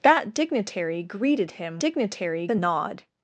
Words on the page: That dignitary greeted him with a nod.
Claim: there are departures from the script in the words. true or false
true